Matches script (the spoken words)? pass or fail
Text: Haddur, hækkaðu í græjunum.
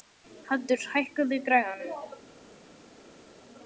pass